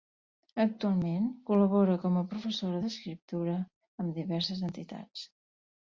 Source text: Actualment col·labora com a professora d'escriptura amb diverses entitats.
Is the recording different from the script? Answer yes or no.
no